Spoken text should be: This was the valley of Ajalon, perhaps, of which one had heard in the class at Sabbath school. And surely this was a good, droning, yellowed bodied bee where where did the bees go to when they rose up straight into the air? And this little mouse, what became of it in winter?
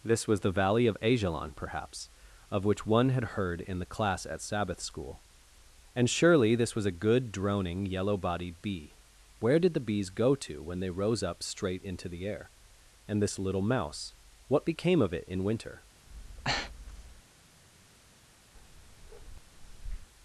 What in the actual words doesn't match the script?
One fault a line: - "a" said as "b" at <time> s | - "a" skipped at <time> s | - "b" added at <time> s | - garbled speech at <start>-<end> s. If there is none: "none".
- "yellowed" said as "yellow" at 7.8 s
- "where" skipped at 9.6 s